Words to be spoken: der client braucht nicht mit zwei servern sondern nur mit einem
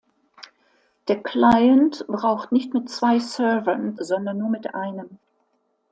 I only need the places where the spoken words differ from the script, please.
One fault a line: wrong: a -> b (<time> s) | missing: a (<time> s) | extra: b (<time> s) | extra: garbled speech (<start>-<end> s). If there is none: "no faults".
no faults